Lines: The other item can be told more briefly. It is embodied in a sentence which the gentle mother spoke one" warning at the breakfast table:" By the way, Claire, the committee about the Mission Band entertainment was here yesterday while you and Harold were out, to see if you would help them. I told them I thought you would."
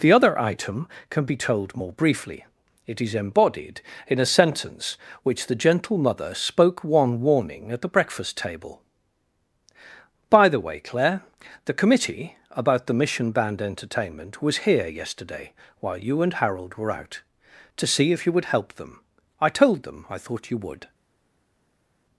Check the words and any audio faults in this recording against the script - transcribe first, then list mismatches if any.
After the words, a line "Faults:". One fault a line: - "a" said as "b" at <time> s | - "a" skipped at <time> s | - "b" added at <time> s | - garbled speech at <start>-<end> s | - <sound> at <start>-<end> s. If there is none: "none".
The other item can be told more briefly. It is embodied in a sentence which the gentle mother spoke one" warning at the breakfast table:" By the way, Claire, the committee about the Mission Band entertainment was here yesterday while you and Harold were out, to see if you would help them. I told them I thought you would."
Faults:
none